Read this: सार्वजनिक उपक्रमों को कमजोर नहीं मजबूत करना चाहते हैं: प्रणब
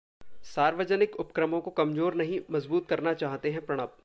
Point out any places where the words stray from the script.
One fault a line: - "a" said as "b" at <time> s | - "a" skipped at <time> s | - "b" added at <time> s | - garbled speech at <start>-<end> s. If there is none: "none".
none